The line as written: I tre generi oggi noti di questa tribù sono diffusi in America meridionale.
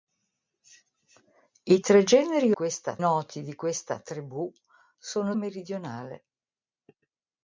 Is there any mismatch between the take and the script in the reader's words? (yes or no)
yes